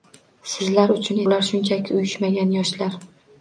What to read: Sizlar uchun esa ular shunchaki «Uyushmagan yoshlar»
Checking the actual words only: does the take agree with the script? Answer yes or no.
no